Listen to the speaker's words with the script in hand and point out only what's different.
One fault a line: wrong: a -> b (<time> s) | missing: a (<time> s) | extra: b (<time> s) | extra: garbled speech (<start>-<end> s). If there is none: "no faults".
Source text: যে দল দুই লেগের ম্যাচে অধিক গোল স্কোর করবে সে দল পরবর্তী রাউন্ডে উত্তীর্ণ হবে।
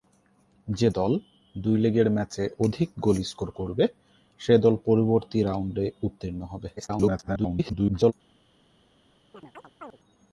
extra: garbled speech (6.8-8.1 s)